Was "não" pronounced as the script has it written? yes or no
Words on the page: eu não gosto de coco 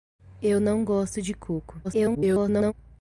yes